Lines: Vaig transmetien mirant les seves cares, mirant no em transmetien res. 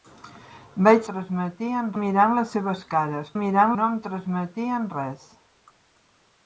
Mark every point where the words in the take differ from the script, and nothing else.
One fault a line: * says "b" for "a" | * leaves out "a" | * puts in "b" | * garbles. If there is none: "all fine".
all fine